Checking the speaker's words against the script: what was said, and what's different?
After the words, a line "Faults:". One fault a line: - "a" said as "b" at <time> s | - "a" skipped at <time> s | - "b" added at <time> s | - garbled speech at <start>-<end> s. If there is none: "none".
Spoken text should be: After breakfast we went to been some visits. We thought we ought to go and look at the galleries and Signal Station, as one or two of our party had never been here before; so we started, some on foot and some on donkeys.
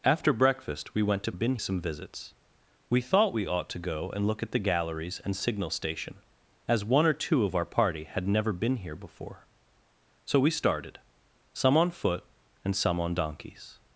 After breakfast we went to been some visits. We thought we ought to go and look at the galleries and Signal Station, as one or two of our party had never been here before; so we started, some on foot and some on donkeys.
Faults:
none